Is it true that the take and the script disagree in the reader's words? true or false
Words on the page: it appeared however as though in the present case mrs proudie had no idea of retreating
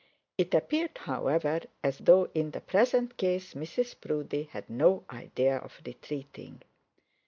false